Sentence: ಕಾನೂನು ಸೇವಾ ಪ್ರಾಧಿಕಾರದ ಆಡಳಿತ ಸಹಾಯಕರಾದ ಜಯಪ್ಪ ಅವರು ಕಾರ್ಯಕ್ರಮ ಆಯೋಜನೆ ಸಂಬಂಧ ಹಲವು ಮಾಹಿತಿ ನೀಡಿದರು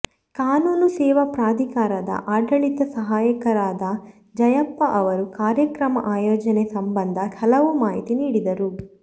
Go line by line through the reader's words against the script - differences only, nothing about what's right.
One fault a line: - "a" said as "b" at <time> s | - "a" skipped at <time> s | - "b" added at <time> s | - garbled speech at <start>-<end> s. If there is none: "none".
none